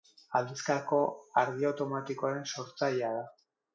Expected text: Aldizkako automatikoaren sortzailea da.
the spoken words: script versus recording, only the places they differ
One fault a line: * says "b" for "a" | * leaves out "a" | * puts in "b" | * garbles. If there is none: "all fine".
* puts in "argi"